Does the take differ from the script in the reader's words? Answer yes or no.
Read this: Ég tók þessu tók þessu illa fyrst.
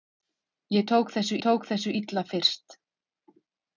no